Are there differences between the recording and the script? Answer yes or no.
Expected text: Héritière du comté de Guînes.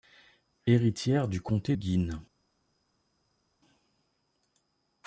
yes